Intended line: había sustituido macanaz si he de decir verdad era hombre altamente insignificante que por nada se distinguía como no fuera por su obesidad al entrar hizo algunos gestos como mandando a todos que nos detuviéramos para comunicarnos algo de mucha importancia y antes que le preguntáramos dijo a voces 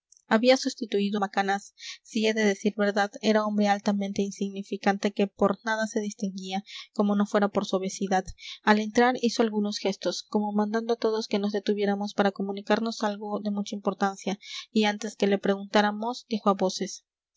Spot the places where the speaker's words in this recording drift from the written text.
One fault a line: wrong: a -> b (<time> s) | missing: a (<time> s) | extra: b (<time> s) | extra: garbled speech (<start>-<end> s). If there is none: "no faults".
no faults